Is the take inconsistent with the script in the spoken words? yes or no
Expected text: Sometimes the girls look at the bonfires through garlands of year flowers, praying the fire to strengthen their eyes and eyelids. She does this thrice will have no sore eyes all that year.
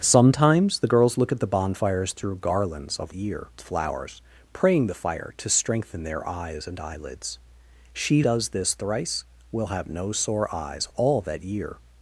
no